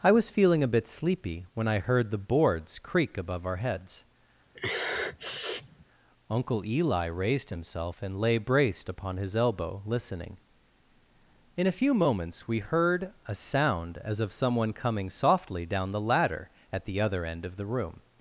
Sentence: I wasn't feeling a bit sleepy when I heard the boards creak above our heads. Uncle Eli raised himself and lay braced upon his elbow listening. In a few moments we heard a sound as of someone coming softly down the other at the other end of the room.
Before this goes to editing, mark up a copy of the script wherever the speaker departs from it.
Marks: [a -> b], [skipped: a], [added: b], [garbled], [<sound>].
I [wasn't -> was] feeling a bit sleepy when I heard the boards creak above our heads. [sniff] Uncle Eli raised himself and lay braced upon his elbow listening. In a few moments we heard a sound as of someone coming softly down the [other -> ladder] at the other end of the room.